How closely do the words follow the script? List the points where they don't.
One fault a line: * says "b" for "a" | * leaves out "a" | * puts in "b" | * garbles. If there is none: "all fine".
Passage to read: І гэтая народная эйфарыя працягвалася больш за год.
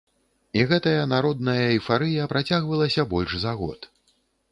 all fine